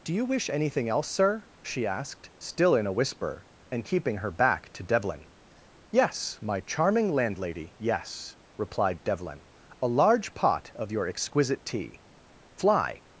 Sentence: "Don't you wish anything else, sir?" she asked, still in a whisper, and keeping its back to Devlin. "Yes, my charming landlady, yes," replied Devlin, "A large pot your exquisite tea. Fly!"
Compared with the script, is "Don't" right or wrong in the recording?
wrong